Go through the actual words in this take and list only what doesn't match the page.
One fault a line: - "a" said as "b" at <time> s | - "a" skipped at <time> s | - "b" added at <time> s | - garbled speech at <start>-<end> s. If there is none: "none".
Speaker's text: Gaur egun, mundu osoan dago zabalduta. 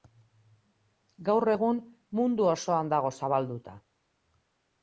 none